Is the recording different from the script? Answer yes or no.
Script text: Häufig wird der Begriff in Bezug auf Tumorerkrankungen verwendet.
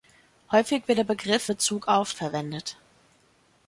yes